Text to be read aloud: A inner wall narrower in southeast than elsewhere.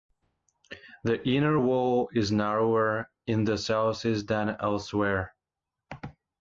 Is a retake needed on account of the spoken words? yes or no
yes